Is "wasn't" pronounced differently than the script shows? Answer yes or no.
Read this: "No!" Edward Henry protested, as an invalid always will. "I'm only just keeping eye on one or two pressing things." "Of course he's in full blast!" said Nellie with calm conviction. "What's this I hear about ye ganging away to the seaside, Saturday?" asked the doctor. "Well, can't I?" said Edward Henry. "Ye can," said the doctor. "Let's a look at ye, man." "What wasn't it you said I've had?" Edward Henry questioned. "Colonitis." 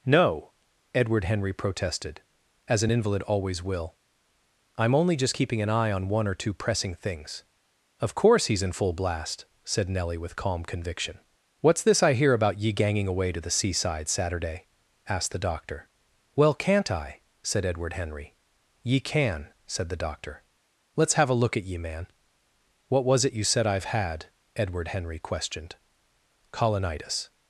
yes